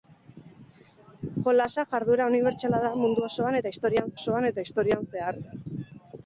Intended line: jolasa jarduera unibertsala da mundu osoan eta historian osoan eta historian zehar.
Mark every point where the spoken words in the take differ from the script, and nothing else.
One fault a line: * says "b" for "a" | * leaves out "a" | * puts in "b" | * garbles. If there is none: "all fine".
all fine